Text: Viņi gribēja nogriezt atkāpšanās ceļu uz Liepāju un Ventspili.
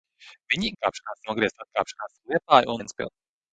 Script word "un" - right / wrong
wrong